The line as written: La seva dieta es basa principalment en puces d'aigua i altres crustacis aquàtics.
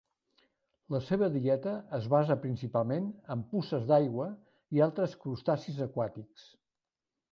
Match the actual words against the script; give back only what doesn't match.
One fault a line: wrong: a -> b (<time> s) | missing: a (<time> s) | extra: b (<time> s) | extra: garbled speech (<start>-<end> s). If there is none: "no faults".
no faults